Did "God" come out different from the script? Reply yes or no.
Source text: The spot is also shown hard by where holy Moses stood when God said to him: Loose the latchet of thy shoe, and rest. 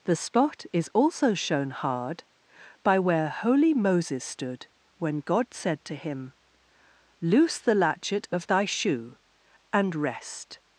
no